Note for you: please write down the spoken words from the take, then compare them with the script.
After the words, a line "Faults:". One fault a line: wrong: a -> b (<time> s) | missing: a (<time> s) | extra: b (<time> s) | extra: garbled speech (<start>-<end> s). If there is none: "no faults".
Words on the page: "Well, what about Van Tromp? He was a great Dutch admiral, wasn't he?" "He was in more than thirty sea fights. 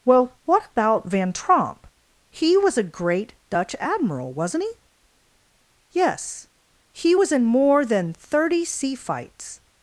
"Well, what about Van Tromp? He was a great Dutch admiral, wasn't he?" "Yes, he was in more than thirty sea fights.
Faults:
extra: Yes (5.9 s)